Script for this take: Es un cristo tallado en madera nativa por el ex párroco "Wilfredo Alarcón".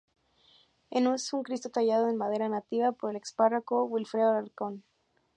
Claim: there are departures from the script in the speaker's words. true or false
false